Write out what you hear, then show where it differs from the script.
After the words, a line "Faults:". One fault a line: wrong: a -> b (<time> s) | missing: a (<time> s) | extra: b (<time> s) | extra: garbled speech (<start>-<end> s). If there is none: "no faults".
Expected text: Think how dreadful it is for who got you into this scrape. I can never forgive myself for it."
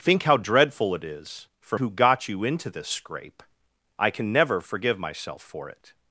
Think how dreadful it is for who got you into this scrape. I can never forgive myself for it."
Faults:
no faults